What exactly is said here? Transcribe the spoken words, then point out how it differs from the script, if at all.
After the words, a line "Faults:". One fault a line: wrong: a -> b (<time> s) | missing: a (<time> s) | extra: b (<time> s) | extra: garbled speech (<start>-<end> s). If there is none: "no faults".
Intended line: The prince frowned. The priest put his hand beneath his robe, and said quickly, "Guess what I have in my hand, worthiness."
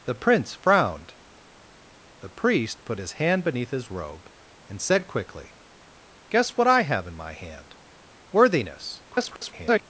The prince frowned. The priest put his hand beneath his robe, and said quickly, "Guess what I have in my hand, worthiness." [garbled]
Faults:
extra: garbled speech (9.1-9.8 s)